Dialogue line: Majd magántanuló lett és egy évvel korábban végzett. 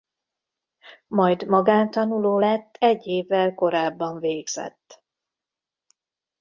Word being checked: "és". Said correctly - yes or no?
no